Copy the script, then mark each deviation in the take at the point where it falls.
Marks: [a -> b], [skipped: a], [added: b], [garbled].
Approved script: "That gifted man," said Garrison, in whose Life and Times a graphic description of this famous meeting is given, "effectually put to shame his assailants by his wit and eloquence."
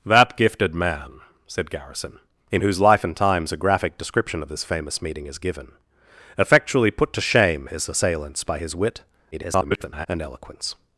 "That gifted man," said Garrison, in whose Life and Times a graphic description of this famous meeting is given, "effectually put to shame his assailants by his wit [garbled] and eloquence."